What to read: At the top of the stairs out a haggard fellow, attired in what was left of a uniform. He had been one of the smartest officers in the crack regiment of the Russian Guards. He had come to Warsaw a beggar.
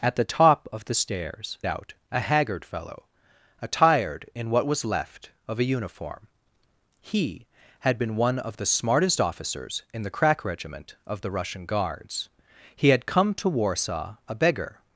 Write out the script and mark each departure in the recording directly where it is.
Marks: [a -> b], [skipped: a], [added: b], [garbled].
At the top of the stairs out a haggard fellow, attired in what was left of a uniform. He had been one of the smartest officers in the crack regiment of the Russian Guards. He had come to Warsaw a beggar.